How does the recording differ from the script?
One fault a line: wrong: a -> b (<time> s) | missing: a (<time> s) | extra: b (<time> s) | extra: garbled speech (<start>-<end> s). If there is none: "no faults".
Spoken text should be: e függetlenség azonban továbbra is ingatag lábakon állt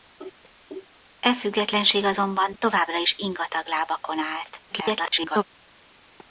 extra: garbled speech (4.7-5.4 s)